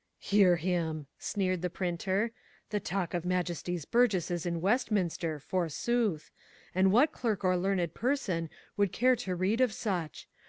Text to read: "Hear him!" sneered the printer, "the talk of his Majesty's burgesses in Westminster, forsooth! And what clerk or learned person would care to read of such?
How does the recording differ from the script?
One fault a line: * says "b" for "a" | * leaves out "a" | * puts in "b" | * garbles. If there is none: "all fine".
* leaves out "his"